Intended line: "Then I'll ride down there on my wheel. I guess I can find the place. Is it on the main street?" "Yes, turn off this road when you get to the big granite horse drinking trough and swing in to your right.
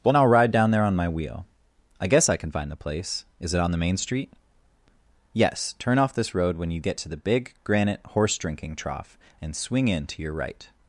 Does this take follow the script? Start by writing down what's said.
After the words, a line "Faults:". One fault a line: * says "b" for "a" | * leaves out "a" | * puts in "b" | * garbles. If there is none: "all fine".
"Well I'll ride down there on my wheel. I guess I can find the place. Is it on the main street?" "Yes, turn off this road when you get to the big granite horse drinking trough and swing in to your right.
Faults:
* says "Well" for "Then"